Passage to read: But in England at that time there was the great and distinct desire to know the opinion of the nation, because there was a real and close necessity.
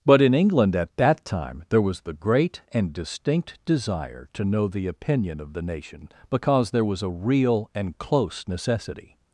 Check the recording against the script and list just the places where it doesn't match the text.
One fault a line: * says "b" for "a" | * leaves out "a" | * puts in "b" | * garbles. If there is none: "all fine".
all fine